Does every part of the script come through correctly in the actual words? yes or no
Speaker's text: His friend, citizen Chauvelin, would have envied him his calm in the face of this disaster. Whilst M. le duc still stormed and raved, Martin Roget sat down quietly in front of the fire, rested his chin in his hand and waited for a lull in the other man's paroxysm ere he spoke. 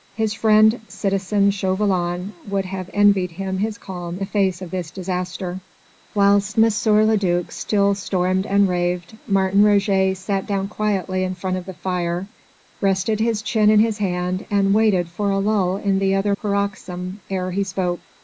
no